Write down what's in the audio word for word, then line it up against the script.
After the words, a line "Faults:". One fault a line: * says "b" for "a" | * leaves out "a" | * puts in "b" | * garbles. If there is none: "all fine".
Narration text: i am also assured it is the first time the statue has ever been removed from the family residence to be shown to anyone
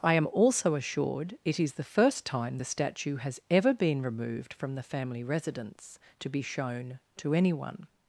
i am also assured it is the first time the statue has ever been removed from the family residence to be shown to anyone
Faults:
all fine